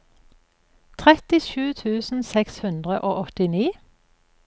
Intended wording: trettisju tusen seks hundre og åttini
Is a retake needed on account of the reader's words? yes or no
no